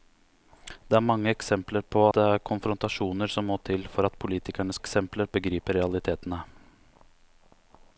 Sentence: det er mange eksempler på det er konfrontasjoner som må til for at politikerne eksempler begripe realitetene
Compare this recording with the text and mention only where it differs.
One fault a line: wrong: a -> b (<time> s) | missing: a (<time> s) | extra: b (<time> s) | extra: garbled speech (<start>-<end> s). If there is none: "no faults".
no faults